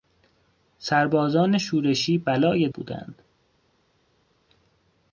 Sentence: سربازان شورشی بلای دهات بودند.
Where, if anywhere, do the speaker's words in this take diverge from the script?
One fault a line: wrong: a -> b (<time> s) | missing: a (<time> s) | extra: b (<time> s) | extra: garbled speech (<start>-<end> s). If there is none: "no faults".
missing: دهات (2.7 s)